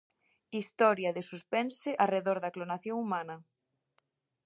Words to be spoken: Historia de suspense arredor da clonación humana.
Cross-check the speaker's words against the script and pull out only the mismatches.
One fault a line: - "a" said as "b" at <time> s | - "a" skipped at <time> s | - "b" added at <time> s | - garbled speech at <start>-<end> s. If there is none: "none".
none